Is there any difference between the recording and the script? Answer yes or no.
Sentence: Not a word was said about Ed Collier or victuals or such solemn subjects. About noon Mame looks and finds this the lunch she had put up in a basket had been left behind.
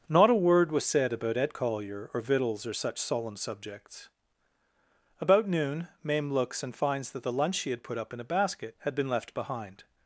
yes